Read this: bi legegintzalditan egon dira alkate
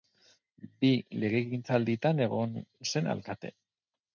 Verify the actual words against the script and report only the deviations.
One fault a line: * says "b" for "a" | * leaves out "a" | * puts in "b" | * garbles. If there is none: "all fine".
* says "zen" for "dira"